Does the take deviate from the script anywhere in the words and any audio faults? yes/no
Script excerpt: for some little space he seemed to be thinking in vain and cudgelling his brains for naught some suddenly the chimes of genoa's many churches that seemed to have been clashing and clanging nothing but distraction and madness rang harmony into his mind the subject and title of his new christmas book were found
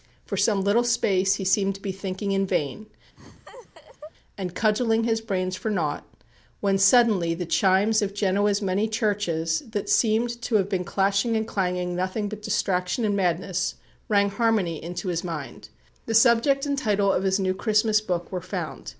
yes